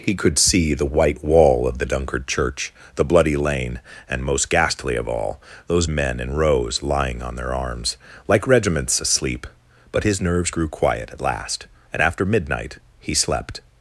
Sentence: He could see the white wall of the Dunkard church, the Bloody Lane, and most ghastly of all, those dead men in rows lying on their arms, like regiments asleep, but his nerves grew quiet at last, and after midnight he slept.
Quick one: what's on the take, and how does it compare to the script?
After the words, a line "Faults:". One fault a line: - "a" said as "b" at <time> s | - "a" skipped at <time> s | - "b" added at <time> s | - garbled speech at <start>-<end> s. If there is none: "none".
He could see the white wall of the Dunkard church, the Bloody Lane, and most ghastly of all, those men in rows lying on their arms, like regiments asleep, but his nerves grew quiet at last, and after midnight he slept.
Faults:
- "dead" skipped at 5.8 s